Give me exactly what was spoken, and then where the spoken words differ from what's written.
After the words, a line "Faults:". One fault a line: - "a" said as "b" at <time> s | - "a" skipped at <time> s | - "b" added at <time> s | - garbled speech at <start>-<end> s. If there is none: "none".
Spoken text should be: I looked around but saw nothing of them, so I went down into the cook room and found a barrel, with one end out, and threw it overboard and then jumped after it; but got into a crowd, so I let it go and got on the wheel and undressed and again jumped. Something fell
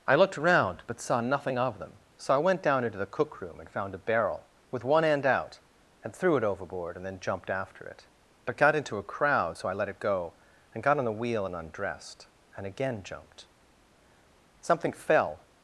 I looked around but saw nothing of them, so I went down into the cook room and found a barrel, with one end out, and threw it overboard and then jumped after it; but got into a crowd, so I let it go and got on the wheel and undressed and again jumped. Something fell
Faults:
none